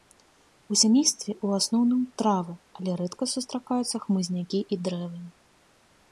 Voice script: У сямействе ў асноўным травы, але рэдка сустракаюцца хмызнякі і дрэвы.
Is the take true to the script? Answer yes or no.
yes